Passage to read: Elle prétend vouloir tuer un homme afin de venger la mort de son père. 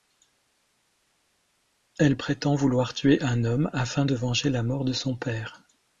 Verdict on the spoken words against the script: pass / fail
pass